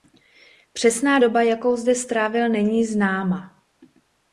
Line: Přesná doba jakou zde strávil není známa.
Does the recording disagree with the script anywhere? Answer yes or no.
no